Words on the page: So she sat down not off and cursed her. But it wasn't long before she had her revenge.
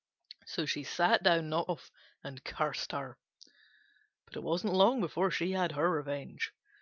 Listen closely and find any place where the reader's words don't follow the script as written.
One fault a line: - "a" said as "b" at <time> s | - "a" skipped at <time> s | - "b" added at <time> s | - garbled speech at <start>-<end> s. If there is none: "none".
none